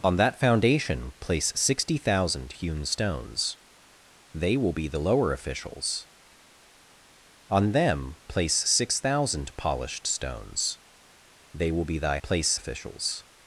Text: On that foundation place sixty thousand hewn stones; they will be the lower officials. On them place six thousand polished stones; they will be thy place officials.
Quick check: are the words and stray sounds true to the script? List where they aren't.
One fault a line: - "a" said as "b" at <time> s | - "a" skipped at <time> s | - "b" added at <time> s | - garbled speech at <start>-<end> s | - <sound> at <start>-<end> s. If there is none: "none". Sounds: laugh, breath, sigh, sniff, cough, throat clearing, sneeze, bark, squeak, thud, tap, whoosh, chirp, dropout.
none